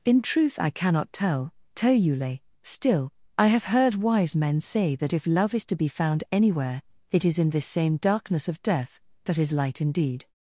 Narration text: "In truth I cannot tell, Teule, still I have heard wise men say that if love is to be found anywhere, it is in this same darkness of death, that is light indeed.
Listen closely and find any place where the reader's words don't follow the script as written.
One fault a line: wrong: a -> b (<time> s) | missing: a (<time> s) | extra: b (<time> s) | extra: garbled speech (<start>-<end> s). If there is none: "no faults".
no faults